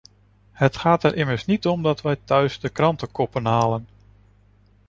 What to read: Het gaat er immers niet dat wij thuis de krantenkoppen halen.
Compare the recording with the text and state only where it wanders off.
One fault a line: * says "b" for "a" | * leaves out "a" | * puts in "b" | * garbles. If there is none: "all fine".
* puts in "om"